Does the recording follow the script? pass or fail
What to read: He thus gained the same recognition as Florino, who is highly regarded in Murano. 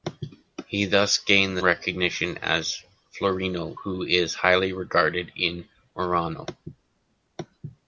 fail